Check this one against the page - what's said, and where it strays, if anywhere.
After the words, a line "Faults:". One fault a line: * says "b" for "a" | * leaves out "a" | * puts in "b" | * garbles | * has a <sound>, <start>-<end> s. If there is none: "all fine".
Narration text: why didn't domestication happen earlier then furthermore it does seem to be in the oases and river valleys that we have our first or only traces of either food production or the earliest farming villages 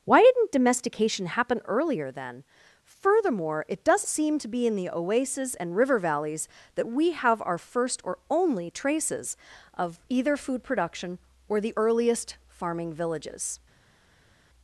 why didn't domestication happen earlier then furthermore it does seem to be in the oases and river valleys that we have our first or only traces of either food production or the earliest farming villages
Faults:
all fine